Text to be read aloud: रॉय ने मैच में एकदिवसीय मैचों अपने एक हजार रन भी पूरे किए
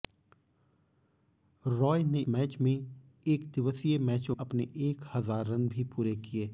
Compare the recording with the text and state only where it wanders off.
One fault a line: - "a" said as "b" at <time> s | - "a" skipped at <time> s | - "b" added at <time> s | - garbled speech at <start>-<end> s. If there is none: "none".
none